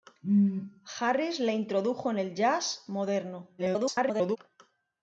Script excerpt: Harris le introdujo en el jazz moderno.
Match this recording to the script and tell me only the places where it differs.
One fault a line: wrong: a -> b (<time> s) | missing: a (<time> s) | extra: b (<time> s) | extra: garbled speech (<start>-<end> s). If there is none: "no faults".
extra: garbled speech (3.6-4.4 s)